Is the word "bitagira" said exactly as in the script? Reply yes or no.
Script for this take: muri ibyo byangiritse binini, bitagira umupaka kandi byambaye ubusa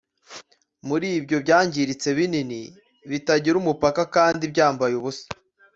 yes